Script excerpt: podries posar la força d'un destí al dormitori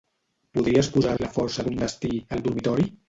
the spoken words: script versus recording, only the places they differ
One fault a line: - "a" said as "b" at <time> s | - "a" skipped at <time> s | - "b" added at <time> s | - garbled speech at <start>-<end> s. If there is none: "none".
none